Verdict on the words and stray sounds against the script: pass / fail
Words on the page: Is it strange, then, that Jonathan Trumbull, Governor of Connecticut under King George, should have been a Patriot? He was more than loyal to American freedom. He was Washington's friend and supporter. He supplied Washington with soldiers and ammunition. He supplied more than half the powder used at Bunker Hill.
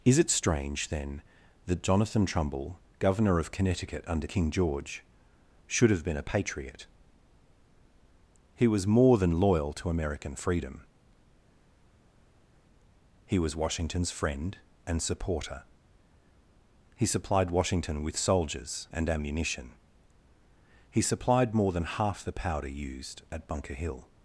pass